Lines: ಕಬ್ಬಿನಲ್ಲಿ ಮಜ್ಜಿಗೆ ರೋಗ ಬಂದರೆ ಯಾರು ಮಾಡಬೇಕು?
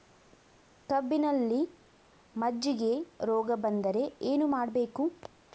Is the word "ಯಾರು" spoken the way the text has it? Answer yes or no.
no